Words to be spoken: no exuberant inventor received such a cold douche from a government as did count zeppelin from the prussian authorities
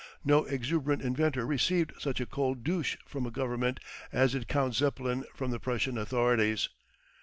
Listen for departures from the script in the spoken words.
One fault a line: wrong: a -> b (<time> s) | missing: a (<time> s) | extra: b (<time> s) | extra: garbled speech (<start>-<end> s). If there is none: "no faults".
no faults